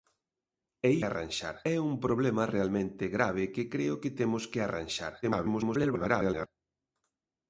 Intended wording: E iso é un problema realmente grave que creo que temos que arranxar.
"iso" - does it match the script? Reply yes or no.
no